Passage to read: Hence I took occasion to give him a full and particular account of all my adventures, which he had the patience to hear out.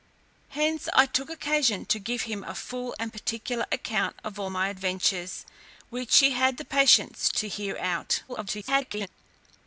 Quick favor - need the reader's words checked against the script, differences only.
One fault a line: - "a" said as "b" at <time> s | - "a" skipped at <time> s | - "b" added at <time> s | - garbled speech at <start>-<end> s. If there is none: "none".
- garbled speech at 8.3-9.1 s